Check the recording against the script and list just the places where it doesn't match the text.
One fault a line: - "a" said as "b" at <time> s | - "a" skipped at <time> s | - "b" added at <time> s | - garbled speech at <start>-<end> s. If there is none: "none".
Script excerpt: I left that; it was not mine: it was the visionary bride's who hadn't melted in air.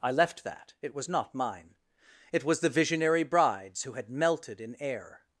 - "hadn't" said as "had" at 3.9 s